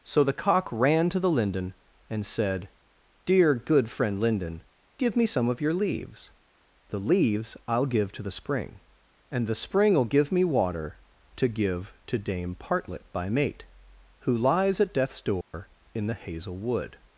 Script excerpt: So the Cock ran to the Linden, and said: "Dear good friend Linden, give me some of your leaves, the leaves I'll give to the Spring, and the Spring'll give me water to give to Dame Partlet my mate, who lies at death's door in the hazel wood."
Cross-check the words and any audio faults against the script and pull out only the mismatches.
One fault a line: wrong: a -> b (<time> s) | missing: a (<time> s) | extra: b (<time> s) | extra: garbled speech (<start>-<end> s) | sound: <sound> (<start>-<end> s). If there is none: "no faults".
wrong: my -> by (13.1 s)
sound: dropout (15.4-15.5 s)